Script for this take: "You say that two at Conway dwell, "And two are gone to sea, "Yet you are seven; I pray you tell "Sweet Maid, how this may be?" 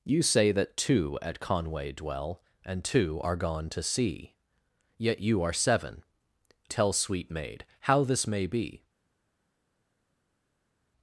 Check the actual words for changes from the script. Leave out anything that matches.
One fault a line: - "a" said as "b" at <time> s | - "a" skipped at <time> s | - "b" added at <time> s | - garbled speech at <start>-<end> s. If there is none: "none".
- "I pray you" skipped at 6.0 s